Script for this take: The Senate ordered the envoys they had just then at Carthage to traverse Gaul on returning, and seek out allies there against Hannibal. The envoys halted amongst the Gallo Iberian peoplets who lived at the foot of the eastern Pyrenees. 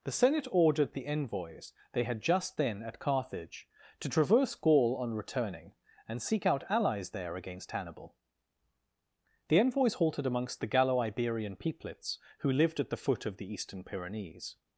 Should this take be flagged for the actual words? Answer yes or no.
no